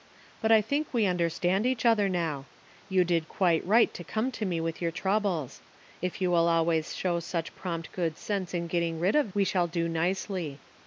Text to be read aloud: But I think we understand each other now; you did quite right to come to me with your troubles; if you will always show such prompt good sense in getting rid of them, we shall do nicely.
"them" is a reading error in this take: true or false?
true